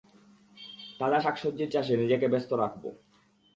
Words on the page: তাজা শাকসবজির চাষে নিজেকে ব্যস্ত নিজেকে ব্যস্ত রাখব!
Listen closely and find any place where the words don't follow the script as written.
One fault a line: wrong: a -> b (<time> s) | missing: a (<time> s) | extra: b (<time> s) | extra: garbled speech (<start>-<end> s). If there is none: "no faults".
missing: নিজেকে ব্যস্ত (2.5 s)